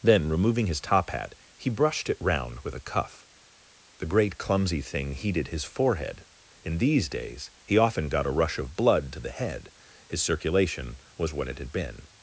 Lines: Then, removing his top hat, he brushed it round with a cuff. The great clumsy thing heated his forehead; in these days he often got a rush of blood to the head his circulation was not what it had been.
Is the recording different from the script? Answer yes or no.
yes